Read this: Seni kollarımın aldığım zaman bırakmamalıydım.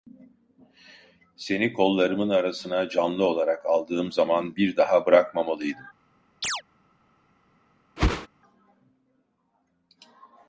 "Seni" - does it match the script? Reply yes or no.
yes